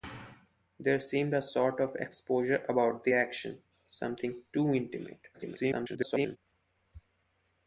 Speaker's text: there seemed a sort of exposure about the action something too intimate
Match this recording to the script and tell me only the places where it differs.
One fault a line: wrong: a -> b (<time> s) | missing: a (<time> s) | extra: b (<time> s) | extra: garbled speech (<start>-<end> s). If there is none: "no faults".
extra: garbled speech (5.3-6.4 s)